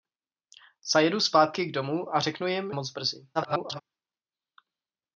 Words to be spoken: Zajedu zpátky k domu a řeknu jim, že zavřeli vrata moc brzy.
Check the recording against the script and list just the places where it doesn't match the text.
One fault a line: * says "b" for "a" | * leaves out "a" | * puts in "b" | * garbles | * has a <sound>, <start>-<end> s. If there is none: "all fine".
* leaves out "že zavřeli vrata"
* garbles